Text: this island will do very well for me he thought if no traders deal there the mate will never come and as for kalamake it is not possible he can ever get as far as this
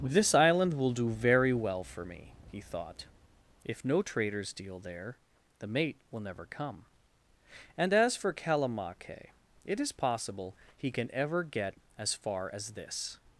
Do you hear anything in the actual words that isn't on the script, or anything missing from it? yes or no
yes